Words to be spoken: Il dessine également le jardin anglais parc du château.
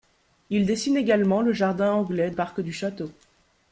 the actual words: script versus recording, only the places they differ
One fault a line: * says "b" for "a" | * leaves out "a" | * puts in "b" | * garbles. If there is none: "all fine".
all fine